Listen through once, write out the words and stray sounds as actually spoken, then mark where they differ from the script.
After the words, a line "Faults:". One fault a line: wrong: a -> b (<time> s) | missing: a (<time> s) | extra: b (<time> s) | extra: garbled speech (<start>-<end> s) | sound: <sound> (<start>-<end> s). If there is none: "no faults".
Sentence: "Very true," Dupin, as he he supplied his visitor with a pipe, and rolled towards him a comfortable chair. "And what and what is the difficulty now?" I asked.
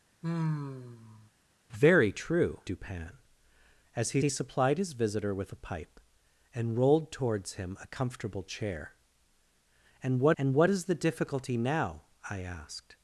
"Very true," Dupin, as he he supplied his visitor with a pipe, and rolled towards him a comfortable chair. "And what and what is the difficulty now?" I asked.
Faults:
sound: sigh (0.2-1.3 s)